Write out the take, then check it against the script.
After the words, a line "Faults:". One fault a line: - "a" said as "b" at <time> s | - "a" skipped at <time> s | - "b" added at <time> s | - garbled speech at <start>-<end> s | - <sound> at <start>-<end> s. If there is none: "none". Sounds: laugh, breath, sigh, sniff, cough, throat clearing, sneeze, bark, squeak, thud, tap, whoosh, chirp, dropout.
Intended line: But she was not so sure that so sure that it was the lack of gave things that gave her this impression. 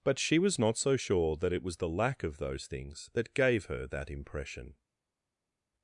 But she was not so sure that it was the lack of those things that gave her that impression.
Faults:
- "so sure that" skipped at 1.5 s
- "gave" said as "those" at 2.4 s
- "this" said as "that" at 3.9 s